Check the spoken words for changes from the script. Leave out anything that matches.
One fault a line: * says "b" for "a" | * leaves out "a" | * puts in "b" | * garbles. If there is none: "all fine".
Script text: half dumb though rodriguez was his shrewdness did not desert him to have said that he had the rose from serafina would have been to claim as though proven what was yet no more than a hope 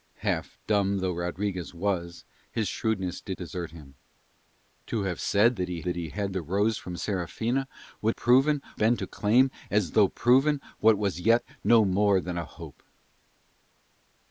* leaves out "not"
* puts in "that he"
* says "proven" for "have"